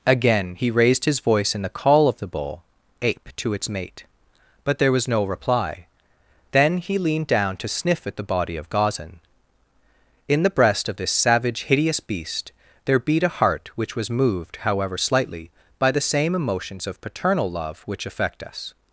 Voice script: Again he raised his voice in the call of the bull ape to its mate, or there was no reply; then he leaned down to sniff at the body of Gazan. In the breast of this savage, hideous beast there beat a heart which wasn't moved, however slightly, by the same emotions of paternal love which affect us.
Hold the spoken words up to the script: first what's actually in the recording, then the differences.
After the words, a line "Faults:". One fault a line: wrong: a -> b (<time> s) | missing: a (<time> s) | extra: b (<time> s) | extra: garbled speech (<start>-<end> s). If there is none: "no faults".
Again he raised his voice in the call of the bull ape to its mate, but there was no reply; then he leaned down to sniff at the body of Gazan. In the breast of this savage, hideous beast there beat a heart which was moved, however slightly, by the same emotions of paternal love which affect us.
Faults:
wrong: or -> but (4.6 s)
wrong: wasn't -> was (14.0 s)